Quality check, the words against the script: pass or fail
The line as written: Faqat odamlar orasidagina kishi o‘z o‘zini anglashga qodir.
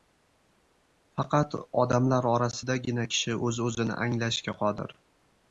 pass